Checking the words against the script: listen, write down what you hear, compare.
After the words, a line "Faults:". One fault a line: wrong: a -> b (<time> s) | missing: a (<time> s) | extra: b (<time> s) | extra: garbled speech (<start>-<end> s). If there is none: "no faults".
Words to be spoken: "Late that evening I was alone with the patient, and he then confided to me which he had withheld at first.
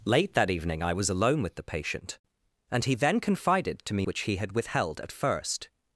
"Late that evening I was alone with the patient, and he then confided to me which he had withheld at first.
Faults:
no faults